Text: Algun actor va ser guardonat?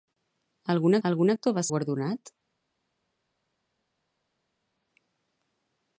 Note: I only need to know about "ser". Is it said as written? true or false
false